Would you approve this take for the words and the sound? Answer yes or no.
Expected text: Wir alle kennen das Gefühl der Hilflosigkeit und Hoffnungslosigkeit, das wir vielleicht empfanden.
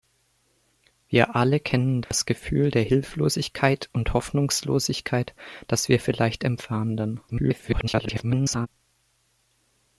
no